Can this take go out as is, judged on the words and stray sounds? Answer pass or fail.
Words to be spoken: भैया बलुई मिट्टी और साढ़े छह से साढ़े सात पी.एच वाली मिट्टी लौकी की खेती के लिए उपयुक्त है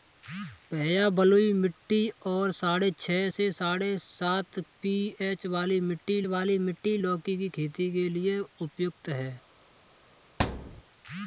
fail